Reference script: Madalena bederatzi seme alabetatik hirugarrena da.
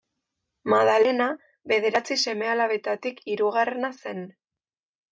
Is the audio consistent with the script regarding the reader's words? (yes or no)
no